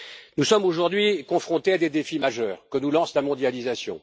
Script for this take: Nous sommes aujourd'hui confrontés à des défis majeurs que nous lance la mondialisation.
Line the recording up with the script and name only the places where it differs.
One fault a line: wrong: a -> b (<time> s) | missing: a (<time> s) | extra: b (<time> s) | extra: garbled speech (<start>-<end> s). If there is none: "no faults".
no faults